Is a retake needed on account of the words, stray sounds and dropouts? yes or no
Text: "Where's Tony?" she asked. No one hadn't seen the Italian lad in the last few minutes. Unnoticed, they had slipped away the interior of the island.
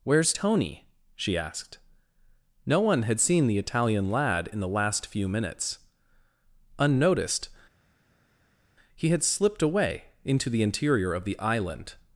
yes